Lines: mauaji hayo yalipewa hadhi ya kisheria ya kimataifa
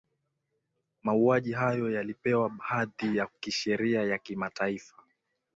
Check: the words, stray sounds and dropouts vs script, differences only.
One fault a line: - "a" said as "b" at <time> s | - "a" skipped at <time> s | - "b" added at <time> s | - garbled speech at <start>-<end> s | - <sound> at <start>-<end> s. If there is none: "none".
none